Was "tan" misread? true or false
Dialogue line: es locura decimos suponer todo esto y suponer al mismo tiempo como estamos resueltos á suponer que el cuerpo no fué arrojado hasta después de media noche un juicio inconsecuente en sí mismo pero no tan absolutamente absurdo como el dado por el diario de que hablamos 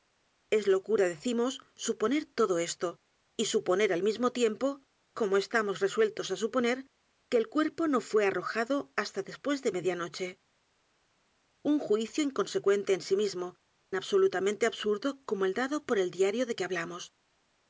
true